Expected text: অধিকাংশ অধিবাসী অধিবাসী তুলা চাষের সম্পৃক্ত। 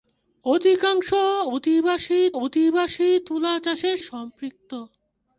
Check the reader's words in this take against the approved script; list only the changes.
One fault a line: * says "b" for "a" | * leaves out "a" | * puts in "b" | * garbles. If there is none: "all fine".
all fine